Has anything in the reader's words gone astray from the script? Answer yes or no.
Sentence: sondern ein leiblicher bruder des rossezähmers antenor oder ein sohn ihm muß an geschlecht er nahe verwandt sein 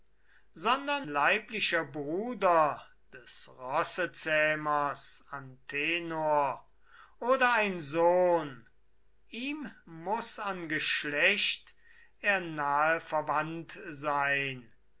yes